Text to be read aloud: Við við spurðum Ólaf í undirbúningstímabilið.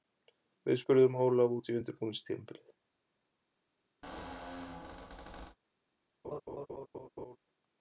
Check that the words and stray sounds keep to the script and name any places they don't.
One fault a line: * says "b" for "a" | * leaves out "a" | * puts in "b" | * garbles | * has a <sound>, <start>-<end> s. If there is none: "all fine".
* leaves out "við"
* puts in "út"
* has a squeak, 4.0-5.6 s
* has a laugh, 6.2-7.4 s